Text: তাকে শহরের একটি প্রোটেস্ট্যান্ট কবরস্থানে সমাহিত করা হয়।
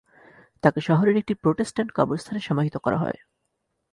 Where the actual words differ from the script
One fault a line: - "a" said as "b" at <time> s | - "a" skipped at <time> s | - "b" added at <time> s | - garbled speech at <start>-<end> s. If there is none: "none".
none